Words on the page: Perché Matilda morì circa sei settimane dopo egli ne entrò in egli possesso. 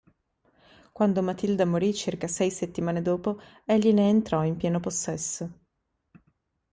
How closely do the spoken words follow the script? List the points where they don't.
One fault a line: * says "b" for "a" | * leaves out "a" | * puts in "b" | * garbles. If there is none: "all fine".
* says "Quando" for "Perché"
* says "pieno" for "egli"